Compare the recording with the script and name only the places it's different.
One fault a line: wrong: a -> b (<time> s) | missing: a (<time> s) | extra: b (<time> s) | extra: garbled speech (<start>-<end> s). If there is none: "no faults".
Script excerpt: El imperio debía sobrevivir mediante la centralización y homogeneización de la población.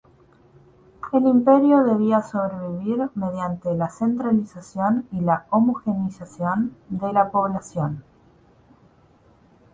extra: la (5.2 s)